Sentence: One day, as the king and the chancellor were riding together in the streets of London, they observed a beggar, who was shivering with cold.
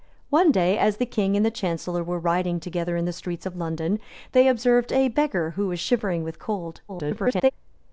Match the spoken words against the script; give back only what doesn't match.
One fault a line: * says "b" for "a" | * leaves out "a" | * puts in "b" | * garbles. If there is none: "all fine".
* garbles